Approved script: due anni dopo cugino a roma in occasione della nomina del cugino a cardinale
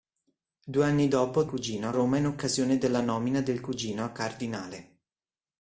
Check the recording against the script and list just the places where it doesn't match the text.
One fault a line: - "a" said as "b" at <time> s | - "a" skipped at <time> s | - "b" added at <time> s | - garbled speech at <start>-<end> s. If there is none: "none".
none